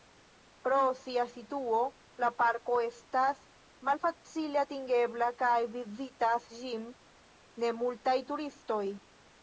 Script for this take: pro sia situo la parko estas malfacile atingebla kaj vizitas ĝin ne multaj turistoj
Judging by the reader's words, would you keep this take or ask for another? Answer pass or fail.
pass